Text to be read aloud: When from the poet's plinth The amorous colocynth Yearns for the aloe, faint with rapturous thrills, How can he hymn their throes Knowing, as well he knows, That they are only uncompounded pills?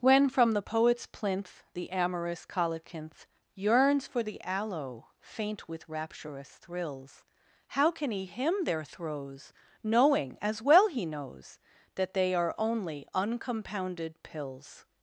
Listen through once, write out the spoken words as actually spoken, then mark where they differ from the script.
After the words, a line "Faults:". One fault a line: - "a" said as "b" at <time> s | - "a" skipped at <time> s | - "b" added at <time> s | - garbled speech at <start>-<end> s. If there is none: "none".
When from the poet's plinth The amorous colocynth Yearns for the aloe, faint with rapturous thrills, How can he hymn their throes Knowing, as well he knows, That they are only uncompounded pills?
Faults:
none